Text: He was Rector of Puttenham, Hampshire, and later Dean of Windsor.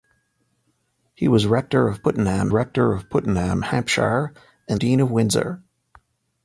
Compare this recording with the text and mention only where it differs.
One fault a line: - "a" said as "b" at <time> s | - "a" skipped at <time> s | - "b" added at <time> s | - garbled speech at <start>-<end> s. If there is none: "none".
- "Rector of Puttenham" added at 2.5 s
- "later" skipped at 4.8 s